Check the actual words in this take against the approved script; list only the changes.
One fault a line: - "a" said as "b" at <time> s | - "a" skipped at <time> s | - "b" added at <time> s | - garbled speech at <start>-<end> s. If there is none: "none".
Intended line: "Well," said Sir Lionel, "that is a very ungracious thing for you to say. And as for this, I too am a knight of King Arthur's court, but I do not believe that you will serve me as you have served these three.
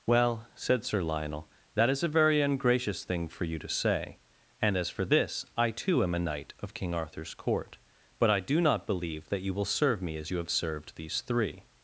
none